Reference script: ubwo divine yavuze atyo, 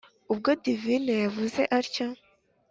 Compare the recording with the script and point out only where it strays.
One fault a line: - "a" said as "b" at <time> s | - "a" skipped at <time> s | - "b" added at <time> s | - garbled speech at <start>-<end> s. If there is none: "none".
none